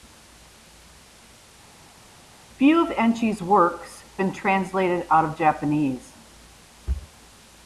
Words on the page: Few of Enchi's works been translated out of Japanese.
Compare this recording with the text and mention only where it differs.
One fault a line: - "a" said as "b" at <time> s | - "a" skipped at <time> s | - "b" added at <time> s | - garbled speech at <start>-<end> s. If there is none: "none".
none